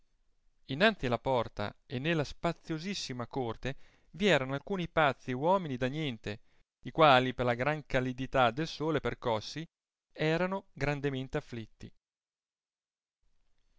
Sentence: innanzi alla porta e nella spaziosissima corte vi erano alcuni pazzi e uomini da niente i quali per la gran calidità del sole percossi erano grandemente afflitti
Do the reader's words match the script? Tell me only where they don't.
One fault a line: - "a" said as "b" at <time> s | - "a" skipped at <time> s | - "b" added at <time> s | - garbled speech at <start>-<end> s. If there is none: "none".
none